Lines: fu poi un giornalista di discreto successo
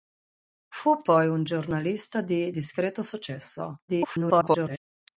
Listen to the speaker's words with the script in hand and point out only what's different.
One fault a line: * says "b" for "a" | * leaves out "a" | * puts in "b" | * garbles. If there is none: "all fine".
* garbles